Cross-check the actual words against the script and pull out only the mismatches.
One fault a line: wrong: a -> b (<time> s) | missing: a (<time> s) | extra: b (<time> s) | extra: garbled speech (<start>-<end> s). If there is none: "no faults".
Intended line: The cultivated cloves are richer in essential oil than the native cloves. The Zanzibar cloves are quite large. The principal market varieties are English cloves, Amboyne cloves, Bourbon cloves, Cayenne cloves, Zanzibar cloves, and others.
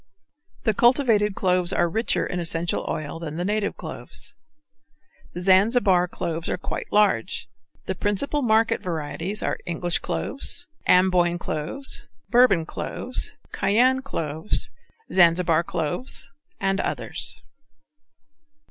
no faults